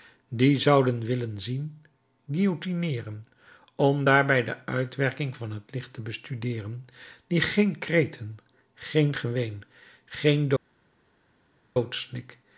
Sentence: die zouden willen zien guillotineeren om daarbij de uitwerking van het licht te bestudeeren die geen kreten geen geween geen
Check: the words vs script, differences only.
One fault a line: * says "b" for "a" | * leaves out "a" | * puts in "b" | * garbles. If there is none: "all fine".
all fine